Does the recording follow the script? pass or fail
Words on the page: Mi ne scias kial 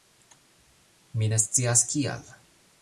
pass